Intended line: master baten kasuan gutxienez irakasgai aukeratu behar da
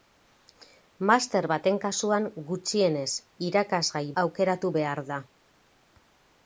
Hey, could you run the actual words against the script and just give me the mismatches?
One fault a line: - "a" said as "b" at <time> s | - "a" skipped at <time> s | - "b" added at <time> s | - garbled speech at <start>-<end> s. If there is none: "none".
none